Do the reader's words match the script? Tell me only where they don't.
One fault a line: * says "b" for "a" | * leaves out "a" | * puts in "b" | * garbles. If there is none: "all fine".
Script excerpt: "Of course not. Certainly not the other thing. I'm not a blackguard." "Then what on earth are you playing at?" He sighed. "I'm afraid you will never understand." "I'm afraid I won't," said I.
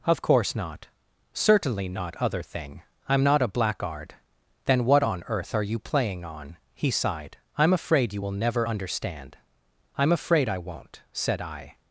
* leaves out "the"
* says "on" for "at"